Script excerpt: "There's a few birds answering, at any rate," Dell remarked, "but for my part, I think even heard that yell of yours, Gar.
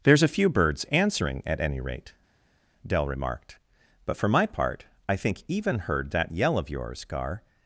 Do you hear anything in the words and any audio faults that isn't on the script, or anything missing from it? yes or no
no